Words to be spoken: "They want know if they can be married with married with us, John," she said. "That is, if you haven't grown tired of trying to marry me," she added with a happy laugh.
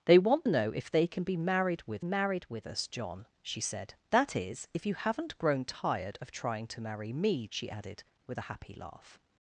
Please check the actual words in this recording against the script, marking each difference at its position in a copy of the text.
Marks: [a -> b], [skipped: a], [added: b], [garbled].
"They want know if they can be married with married with us, John," she said. "That is, if you haven't grown tired of trying to marry me," she added with a happy laugh.